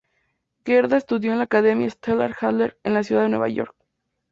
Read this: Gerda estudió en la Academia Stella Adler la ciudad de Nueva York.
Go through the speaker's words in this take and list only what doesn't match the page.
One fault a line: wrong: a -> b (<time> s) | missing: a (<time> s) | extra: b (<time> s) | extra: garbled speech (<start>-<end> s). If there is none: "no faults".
extra: en (2.8 s)